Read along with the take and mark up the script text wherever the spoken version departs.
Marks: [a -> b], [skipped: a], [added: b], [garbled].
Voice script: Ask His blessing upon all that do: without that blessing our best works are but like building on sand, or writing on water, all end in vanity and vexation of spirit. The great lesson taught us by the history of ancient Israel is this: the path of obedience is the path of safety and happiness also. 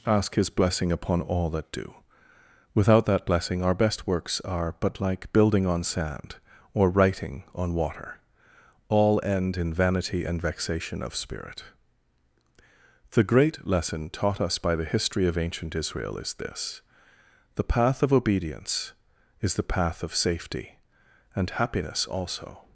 Ask His blessing upon all that do: without that blessing our best works are but like building on sand, or writing on water, all end in vanity and vexation of spirit. The great lesson taught us by the history of ancient Israel is this: the path of obedience is the path of safety and happiness also.